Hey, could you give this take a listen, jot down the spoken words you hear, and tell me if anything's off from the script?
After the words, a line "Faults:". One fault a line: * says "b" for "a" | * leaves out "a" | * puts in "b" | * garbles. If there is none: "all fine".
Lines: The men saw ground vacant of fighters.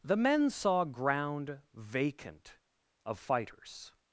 The men saw ground vacant of fighters.
Faults:
all fine